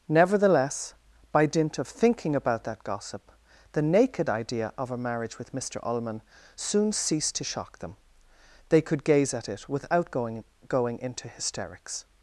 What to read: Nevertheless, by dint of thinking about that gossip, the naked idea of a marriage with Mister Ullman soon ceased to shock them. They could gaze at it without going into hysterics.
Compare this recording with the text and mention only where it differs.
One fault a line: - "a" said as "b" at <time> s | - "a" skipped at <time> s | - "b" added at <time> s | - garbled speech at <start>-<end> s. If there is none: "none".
- "going" added at 10.7 s